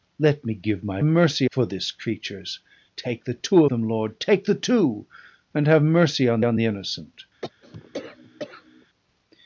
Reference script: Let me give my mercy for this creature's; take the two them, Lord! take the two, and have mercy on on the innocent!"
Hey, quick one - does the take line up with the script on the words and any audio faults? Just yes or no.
no